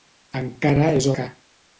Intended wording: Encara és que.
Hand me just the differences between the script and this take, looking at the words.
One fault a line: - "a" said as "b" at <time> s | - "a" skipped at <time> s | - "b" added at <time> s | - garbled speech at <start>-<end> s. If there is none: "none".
none